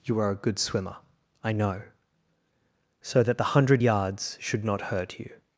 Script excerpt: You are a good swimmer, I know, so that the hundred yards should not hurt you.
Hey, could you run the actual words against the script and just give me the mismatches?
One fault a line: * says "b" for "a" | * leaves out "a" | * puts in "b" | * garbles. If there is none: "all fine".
all fine